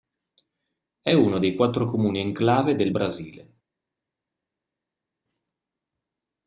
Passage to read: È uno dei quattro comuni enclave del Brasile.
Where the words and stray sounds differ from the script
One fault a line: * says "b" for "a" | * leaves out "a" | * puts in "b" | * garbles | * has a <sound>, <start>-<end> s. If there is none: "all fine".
all fine